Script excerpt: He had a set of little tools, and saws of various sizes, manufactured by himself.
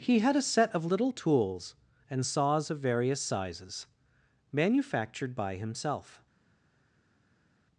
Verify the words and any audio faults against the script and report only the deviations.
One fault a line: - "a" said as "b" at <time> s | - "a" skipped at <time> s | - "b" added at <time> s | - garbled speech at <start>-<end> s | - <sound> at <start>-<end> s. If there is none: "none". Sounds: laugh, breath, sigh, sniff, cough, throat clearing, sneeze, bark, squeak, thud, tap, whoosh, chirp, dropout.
none